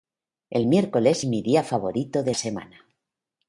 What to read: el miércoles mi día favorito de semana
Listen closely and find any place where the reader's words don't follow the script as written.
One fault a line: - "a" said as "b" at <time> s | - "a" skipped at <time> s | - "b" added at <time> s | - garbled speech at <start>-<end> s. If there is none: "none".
none